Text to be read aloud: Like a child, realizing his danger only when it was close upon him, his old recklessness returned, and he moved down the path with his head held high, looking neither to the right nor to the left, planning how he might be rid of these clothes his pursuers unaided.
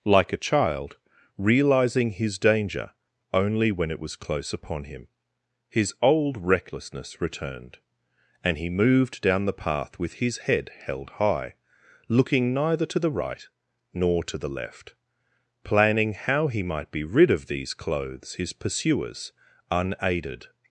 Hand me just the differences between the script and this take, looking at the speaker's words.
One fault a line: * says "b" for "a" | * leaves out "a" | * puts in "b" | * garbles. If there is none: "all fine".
all fine